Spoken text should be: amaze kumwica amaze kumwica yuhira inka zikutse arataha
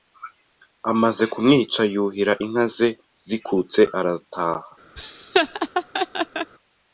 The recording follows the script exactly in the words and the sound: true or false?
false